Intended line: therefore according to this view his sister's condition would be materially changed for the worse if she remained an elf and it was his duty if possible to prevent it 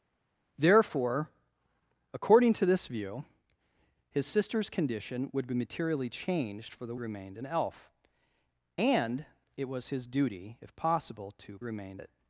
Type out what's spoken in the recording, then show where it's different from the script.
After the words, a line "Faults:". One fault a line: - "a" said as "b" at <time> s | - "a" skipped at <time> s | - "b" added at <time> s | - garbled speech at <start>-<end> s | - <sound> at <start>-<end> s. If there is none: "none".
therefore according to this view his sister's condition would be materially changed for the remained an elf and it was his duty if possible to remained it
Faults:
- "worse if she" skipped at 7.0 s
- "prevent" said as "remained" at 11.6 s